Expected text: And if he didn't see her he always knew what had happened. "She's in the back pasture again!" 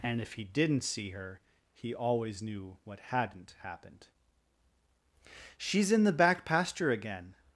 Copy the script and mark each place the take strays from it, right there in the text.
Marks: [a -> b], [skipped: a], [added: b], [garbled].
And if he didn't see her he always knew what [had -> hadn't] happened. "She's in the back pasture again!"